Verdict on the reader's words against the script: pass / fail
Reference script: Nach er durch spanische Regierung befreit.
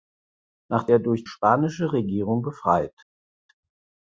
pass